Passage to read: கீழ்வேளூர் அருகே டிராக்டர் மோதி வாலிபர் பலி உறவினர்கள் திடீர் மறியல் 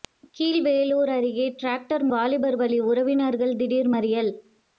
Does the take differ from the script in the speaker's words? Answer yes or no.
yes